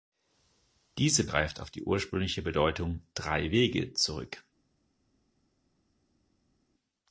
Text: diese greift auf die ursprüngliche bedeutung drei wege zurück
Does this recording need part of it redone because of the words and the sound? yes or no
no